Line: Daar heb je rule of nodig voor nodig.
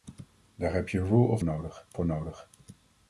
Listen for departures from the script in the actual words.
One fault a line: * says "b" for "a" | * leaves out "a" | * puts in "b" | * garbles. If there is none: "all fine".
all fine